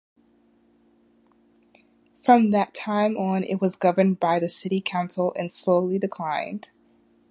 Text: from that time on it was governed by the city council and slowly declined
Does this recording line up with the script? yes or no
yes